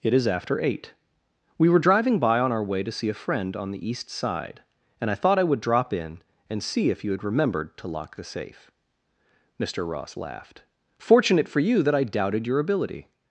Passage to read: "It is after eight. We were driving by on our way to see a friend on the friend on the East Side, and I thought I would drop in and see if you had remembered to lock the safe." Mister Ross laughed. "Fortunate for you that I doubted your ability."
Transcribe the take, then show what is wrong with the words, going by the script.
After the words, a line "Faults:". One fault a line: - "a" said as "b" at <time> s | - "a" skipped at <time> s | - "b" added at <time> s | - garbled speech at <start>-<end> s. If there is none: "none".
"It is after eight. We were driving by on our way to see a friend on the East Side, and I thought I would drop in and see if you had remembered to lock the safe." Mister Ross laughed. "Fortunate for you that I doubted your ability."
Faults:
- "friend on the" skipped at 3.9 s